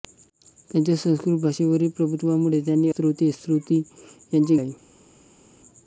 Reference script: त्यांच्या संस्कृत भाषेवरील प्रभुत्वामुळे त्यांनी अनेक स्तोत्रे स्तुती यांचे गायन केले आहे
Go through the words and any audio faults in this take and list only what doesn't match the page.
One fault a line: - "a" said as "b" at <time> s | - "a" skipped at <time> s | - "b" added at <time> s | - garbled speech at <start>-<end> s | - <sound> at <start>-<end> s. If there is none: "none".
- "अनेक" skipped at 2.9 s
- "गायन केले" skipped at 4.6 s